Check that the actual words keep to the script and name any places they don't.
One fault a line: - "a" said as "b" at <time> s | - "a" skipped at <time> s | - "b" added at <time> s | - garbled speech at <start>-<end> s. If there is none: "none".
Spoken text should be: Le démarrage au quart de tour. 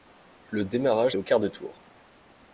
none